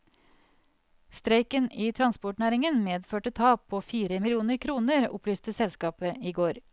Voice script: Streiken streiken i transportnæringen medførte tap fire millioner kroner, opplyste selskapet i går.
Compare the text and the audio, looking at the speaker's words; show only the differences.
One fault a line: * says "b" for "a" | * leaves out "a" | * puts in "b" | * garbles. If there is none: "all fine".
* leaves out "streiken"
* puts in "på"